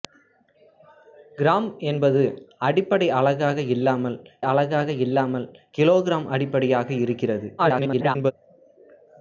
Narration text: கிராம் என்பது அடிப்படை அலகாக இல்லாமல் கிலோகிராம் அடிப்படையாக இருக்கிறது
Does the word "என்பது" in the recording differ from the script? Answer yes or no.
no